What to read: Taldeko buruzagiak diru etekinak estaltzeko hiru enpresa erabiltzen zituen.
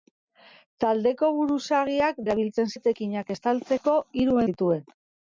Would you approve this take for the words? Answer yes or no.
no